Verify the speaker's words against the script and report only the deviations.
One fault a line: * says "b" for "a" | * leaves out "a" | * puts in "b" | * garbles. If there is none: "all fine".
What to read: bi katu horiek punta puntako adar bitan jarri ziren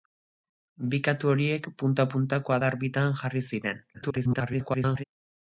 * garbles